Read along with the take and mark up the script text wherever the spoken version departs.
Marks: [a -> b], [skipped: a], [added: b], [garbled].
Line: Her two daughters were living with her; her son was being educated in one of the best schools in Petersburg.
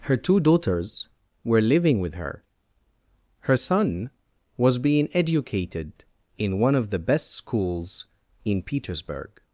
Her two daughters were living with her; her son was being educated in one of the best schools in Petersburg.